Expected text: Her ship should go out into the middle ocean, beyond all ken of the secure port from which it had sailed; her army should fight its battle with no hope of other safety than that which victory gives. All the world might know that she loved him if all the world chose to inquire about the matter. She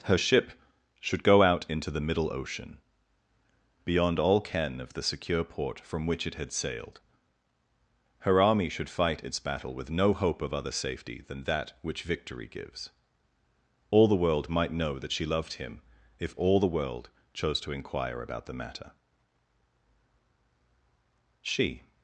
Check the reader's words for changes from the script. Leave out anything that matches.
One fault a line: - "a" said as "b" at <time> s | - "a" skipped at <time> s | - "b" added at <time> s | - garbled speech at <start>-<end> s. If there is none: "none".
none